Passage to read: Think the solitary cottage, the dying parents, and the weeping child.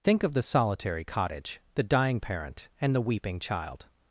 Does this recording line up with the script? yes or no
no